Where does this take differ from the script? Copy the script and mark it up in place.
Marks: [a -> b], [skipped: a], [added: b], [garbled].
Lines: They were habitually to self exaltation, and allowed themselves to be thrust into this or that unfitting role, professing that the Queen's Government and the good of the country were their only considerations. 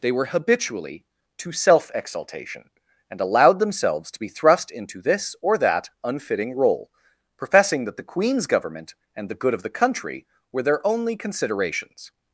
They were habitually to self exaltation, and allowed themselves to be thrust into this or that unfitting role, professing that the Queen's Government and the good of the country were their only considerations.